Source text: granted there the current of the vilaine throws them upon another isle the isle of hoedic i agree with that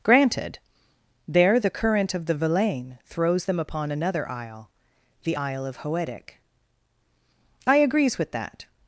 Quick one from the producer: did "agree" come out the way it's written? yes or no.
no